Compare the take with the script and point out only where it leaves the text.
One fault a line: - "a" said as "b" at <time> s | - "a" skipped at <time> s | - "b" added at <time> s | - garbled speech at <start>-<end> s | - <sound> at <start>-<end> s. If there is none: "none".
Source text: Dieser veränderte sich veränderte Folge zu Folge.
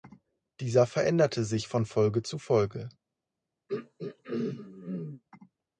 - "veränderte" said as "von" at 1.7 s
- throat clearing at 3.7-5.2 s